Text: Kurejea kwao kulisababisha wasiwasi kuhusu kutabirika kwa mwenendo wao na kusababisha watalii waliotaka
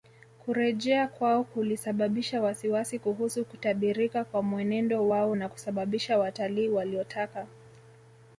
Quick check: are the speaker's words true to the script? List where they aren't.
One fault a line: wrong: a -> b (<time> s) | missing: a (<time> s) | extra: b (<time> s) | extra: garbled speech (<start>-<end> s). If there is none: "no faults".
no faults